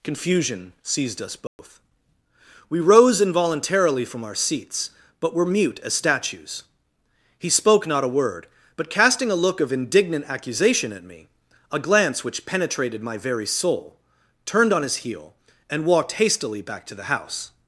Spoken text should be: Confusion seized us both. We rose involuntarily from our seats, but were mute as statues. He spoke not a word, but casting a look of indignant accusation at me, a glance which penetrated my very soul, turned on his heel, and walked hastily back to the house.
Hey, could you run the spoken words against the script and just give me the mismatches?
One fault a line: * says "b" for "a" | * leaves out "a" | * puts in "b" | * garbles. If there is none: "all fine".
all fine